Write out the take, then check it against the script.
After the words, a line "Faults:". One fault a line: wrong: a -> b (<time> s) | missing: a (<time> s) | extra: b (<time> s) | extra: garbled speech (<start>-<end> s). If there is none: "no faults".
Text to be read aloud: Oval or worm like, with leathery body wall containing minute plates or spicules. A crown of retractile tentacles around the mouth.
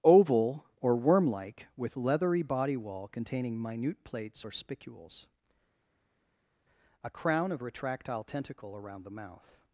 Oval or worm like, with leathery body wall containing minute plates or spicules. A crown of retractile tentacle around the mouth.
Faults:
wrong: tentacles -> tentacle (8.3 s)